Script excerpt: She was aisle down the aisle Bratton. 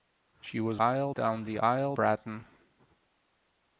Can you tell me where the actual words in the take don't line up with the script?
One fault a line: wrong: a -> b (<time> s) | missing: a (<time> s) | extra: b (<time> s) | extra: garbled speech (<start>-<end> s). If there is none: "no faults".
no faults